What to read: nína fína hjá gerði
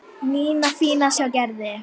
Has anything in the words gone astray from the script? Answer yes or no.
no